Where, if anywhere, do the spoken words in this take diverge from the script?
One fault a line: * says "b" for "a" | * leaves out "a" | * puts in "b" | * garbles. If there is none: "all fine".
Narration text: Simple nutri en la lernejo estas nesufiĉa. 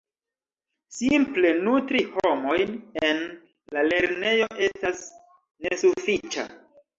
* puts in "homojn"